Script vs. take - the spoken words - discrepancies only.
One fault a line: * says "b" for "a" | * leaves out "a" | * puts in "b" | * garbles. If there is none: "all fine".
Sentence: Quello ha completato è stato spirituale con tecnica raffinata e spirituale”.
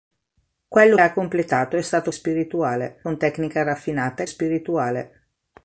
all fine